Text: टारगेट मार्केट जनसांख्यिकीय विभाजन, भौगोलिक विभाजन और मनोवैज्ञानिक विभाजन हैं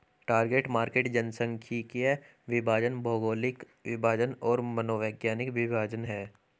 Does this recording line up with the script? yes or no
yes